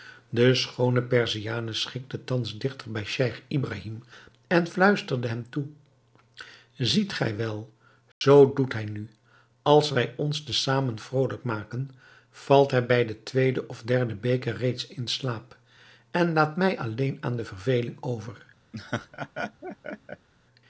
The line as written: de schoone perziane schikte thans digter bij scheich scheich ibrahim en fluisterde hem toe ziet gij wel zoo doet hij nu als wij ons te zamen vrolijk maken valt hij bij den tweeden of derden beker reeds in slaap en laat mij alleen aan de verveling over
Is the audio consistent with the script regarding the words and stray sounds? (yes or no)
no